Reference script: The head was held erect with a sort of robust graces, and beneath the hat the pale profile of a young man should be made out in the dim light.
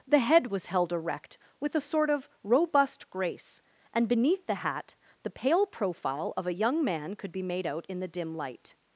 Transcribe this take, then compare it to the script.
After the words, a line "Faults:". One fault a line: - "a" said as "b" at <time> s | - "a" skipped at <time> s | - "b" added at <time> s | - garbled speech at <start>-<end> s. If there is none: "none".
The head was held erect with a sort of robust grace, and beneath the hat the pale profile of a young man could be made out in the dim light.
Faults:
- "graces" said as "grace" at 3.1 s
- "should" said as "could" at 7.2 s